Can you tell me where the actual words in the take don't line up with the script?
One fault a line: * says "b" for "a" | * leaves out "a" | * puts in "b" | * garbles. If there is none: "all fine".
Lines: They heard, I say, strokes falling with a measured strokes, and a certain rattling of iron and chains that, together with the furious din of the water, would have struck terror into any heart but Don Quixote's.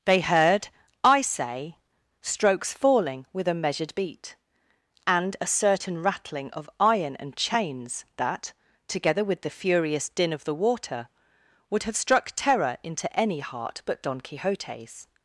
* says "beat" for "strokes"